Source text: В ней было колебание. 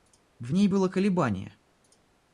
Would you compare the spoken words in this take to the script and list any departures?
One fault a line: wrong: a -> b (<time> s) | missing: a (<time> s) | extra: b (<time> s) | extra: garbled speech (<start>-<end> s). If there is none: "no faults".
no faults